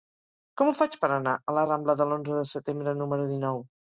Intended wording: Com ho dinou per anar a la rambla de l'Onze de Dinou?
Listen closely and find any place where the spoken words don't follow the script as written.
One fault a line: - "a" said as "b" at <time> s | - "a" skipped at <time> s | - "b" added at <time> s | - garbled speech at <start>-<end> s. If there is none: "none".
- "dinou" said as "faig" at 0.8 s
- "Setembre número" added at 2.5 s